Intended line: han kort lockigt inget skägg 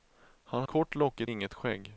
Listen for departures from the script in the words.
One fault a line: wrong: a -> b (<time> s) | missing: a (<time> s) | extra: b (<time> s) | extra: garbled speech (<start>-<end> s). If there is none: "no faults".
no faults